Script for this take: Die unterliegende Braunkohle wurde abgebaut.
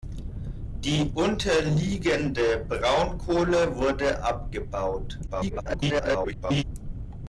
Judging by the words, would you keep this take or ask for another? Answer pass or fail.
fail